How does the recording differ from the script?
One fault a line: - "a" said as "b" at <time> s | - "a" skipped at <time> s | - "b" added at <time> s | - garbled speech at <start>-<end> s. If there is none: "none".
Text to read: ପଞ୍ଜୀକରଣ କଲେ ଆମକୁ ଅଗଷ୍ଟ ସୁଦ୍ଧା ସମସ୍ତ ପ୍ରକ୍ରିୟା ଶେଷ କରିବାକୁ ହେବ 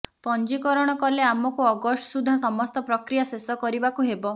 none